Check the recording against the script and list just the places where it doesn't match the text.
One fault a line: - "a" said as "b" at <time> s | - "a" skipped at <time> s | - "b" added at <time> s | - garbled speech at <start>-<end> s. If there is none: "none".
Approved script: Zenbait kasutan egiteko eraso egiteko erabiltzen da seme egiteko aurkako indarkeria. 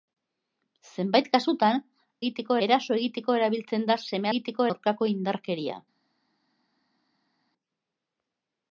none